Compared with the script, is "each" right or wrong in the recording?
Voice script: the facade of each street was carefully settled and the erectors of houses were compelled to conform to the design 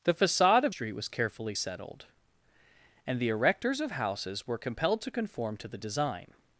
wrong